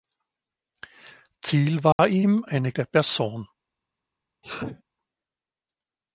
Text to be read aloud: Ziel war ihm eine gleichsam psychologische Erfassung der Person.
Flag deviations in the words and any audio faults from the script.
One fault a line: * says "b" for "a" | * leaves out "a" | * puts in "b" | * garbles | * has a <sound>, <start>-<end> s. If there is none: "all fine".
* has a dropout, 1.9-2.0 s
* leaves out "gleichsam psychologische Erfassung"
* has a sneeze, 4.4-4.8 s